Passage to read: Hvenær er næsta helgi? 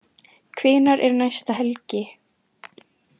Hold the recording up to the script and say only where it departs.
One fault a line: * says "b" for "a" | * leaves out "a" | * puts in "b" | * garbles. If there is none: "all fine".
all fine